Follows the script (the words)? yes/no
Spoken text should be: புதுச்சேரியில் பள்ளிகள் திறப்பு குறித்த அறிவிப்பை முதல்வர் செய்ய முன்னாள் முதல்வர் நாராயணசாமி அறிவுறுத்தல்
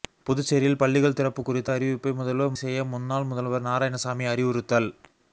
yes